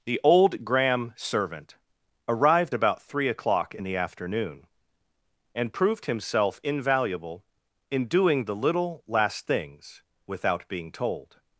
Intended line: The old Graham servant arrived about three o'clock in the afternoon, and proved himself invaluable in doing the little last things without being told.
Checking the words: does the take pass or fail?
pass